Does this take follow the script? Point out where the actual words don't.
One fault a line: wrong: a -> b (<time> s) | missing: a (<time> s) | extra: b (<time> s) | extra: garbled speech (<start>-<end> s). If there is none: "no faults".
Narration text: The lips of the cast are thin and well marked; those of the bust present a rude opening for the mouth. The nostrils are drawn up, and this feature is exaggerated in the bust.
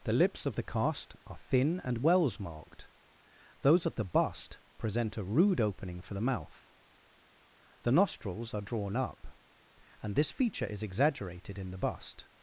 wrong: well -> wells (2.0 s)